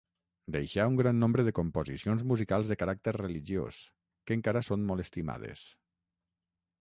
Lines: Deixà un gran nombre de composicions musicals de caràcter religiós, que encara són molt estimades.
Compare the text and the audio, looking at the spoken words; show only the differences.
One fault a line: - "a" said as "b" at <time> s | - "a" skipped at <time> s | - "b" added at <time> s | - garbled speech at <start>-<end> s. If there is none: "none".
none